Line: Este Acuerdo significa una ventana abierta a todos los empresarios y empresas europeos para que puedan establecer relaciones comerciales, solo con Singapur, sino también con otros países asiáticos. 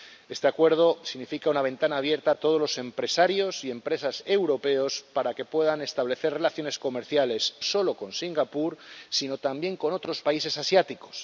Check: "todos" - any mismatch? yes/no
no